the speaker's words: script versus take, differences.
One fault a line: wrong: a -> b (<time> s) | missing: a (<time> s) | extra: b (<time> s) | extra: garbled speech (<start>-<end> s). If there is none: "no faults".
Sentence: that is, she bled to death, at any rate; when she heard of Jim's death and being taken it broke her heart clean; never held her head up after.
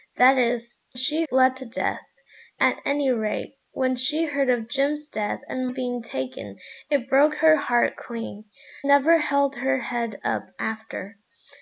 no faults